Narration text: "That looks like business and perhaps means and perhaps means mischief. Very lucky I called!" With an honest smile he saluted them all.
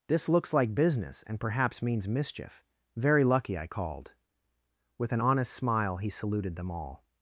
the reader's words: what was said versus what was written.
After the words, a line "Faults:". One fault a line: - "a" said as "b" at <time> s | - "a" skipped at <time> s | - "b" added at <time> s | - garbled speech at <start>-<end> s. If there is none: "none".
"This looks like business and perhaps means mischief. Very lucky I called!" With an honest smile he saluted them all.
Faults:
- "That" said as "This" at 0.1 s
- "and perhaps means" skipped at 2.1 s